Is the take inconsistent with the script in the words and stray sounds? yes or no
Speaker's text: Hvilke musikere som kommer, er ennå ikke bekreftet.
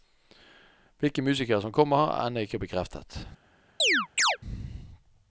yes